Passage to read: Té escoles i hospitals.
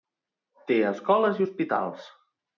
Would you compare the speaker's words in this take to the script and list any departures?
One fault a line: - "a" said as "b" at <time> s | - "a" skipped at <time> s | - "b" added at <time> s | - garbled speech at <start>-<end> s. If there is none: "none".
none